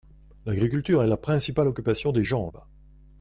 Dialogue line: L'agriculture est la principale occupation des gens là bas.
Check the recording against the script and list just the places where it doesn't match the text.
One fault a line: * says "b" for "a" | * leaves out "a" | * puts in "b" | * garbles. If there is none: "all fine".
* leaves out "là"